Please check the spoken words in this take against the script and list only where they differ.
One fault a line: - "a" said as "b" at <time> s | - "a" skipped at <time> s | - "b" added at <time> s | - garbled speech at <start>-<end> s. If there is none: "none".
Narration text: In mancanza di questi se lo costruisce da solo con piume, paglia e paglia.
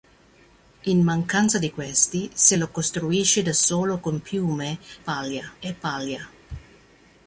none